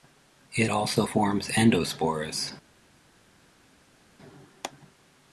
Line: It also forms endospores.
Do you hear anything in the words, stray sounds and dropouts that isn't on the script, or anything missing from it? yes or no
no